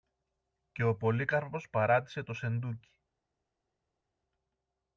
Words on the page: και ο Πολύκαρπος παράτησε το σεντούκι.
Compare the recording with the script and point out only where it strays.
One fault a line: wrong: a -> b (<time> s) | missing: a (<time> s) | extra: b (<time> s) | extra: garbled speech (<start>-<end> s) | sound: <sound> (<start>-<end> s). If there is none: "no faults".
no faults